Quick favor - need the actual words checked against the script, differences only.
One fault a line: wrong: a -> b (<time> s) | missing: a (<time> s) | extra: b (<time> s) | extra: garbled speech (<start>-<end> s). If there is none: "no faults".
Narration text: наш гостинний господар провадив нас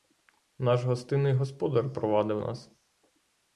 no faults